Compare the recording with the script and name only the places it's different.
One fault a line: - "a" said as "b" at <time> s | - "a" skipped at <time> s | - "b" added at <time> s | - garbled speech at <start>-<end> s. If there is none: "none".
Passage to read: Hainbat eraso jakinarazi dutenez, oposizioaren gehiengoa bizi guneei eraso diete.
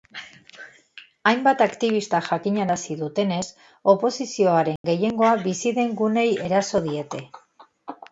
- "eraso" said as "aktibistak" at 1.6 s
- "den" added at 5.8 s